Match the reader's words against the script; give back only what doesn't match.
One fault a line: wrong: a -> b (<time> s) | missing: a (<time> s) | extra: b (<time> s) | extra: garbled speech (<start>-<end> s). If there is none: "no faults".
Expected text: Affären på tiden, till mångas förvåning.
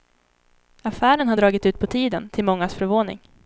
extra: har dragit ut (1.3 s)